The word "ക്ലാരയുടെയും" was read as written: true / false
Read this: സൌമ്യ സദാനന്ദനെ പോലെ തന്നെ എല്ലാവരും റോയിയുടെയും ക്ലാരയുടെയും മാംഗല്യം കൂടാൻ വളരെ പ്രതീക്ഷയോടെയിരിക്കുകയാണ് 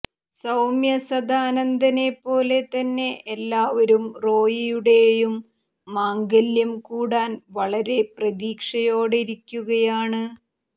false